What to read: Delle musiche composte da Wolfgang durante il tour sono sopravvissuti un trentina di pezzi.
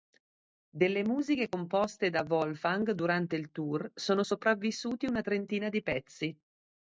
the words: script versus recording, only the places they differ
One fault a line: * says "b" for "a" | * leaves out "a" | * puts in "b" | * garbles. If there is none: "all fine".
* says "una" for "un"